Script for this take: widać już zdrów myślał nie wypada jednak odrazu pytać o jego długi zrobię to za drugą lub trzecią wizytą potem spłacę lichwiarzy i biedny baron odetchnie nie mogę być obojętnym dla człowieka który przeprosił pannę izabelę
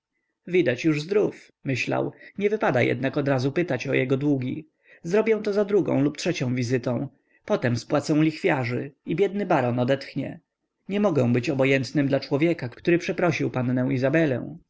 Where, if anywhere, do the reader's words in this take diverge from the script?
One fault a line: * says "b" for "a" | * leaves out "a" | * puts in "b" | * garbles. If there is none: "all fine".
all fine